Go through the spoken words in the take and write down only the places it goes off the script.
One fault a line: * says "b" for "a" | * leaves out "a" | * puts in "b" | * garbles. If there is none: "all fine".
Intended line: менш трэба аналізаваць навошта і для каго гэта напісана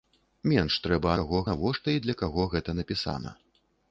* says "каго" for "аналізаваць"